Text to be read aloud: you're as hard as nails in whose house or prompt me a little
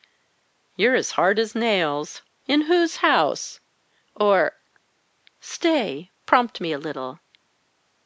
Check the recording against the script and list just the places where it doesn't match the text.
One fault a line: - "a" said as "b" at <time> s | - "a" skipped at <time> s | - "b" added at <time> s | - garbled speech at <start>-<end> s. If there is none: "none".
- "stay" added at 5.4 s